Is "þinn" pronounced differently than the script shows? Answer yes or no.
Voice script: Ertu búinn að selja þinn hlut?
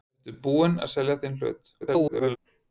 no